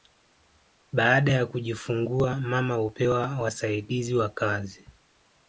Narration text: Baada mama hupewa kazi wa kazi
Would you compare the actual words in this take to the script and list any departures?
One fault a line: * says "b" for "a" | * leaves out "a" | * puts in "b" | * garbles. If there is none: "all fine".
* puts in "ya kujifungua"
* says "wasaidizi" for "kazi"